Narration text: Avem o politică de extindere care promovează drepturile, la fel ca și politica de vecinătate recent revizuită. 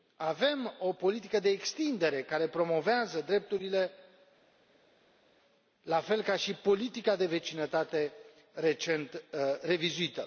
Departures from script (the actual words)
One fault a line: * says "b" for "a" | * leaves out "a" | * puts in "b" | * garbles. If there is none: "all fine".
all fine